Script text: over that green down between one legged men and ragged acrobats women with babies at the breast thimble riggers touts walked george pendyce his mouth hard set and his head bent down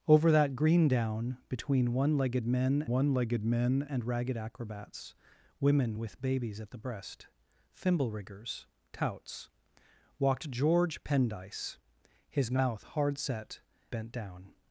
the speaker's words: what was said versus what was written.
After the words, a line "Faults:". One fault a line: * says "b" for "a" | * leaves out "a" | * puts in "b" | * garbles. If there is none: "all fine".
over that green down between one legged men one legged men and ragged acrobats women with babies at the breast thimble riggers touts walked george pendyce his mouth hard set bent down
Faults:
* puts in "one legged men"
* leaves out "and his head"